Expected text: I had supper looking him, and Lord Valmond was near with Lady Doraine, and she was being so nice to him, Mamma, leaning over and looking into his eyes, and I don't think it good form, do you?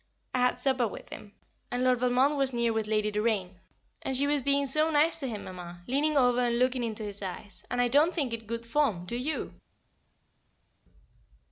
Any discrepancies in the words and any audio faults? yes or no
yes